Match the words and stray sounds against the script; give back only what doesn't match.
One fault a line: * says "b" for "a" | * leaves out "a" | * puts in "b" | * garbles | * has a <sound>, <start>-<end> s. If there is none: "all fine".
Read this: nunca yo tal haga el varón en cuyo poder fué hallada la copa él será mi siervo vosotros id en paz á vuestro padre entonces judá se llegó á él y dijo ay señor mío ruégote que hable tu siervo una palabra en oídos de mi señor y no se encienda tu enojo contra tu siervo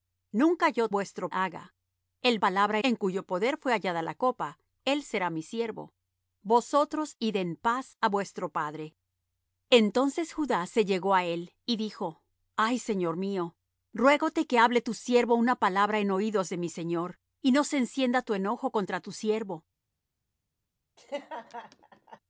* says "vuestro" for "tal"
* says "palabra" for "varón"
* has a laugh, 21.0-22.2 s